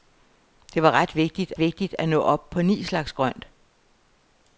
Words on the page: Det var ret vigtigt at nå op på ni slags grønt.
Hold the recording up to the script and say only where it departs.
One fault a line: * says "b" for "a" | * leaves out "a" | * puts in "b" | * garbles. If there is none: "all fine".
* puts in "vigtigt"